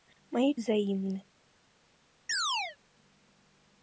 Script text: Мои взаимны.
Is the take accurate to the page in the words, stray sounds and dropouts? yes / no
no